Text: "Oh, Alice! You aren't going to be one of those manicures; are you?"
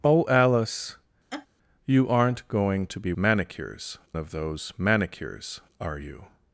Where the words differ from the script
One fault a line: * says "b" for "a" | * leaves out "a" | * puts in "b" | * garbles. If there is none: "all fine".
* says "manicures" for "one"